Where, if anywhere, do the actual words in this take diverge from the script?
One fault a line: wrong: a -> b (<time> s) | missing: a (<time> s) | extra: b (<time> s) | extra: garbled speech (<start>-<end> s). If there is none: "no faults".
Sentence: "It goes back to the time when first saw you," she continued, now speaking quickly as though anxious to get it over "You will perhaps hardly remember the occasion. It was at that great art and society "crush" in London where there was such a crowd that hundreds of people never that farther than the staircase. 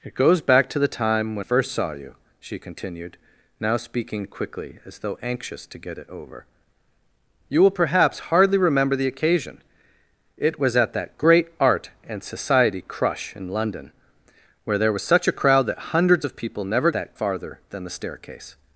no faults